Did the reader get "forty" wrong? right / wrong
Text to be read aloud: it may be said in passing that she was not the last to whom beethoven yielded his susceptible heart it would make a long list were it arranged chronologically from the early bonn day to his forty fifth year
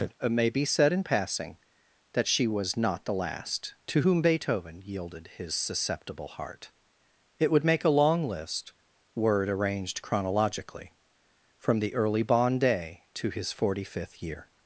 right